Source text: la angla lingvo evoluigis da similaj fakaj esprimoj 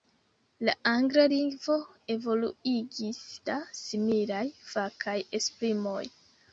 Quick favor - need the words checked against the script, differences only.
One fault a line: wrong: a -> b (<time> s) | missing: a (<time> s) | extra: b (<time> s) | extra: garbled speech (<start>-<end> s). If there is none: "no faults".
no faults